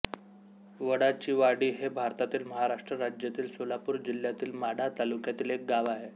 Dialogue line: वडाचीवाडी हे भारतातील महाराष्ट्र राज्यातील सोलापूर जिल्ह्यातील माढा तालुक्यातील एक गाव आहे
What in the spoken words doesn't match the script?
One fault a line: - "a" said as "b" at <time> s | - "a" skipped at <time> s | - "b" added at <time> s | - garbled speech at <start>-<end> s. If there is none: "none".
none